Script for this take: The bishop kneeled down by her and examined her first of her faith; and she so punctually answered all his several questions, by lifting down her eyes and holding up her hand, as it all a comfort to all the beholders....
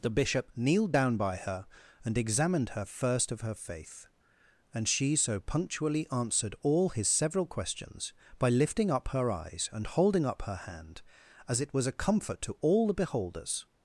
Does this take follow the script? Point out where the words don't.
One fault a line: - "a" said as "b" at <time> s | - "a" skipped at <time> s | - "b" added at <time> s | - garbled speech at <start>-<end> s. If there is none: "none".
- "down" said as "up" at 8.9 s
- "all" said as "was" at 11.7 s